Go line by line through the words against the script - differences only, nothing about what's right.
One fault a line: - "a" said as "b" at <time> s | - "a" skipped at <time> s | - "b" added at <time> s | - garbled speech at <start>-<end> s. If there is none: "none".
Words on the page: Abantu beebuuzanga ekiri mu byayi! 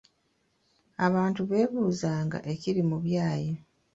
none